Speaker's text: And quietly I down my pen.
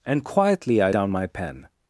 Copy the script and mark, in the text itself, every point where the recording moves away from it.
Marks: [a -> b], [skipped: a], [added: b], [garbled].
And quietly I down my pen.